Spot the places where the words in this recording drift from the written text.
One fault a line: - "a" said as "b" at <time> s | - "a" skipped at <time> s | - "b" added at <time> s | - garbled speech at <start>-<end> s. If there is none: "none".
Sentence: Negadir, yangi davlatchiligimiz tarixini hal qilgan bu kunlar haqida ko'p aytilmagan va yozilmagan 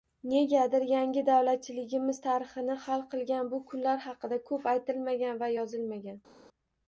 none